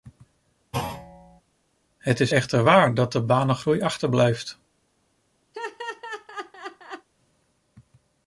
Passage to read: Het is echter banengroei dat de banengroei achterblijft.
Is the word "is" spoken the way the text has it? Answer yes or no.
yes